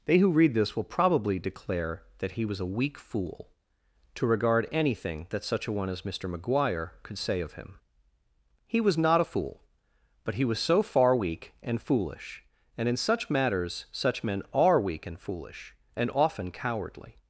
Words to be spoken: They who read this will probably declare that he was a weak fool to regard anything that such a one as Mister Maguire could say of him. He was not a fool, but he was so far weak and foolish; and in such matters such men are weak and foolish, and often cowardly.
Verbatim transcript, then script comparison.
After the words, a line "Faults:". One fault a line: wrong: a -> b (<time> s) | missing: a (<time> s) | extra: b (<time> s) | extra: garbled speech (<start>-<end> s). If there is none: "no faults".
They who read this will probably declare that he was a weak fool to regard anything that such a one as Mister Maguire could say of him. He was not a fool, but he was so far weak and foolish; and in such matters such men are weak and foolish, and often cowardly.
Faults:
no faults